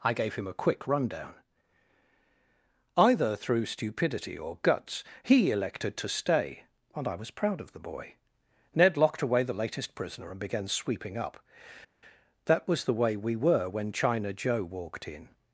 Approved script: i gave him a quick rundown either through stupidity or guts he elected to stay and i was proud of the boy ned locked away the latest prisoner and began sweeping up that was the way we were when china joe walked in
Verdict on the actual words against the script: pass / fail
pass